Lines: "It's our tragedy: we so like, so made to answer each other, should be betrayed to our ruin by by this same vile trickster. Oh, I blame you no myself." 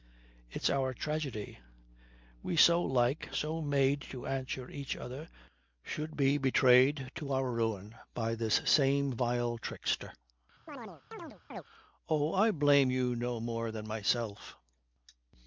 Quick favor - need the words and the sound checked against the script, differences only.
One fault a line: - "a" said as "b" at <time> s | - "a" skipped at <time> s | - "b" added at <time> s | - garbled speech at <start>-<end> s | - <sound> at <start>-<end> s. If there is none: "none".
- "by" skipped at 8.3 s
- chirp at 10.7-11.6 s
- "more than" added at 13.4 s